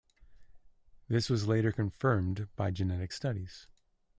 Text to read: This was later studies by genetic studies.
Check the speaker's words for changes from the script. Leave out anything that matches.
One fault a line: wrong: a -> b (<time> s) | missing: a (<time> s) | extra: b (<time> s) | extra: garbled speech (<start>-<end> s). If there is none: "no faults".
wrong: studies -> confirmed (1.7 s)